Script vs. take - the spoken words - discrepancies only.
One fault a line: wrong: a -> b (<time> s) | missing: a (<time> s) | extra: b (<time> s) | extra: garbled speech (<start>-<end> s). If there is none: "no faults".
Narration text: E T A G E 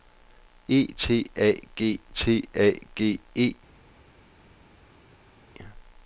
extra: T A G (2.1 s)